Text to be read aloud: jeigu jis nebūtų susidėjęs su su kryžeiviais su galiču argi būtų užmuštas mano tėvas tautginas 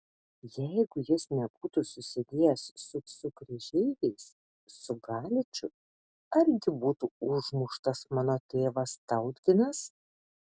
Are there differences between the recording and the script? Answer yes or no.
no